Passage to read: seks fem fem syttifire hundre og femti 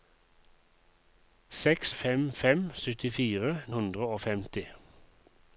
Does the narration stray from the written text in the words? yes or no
no